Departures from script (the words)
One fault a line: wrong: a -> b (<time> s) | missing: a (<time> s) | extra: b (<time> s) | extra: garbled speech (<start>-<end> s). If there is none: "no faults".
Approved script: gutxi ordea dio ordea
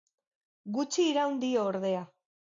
wrong: ordea -> iraun (1.1 s)